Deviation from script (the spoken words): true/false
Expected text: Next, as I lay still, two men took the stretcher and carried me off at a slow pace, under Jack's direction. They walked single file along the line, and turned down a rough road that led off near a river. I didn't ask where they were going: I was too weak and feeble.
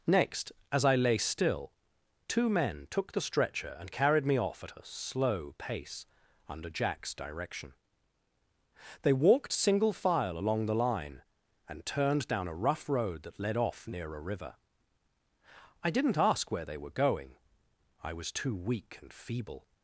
false